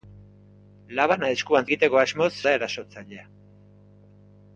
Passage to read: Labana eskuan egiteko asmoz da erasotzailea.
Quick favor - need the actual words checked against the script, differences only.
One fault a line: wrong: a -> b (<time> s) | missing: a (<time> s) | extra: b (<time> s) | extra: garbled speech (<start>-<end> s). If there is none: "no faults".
no faults